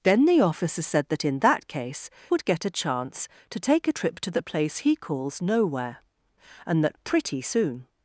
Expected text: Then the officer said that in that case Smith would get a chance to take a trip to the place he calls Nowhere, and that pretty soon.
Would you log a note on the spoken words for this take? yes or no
yes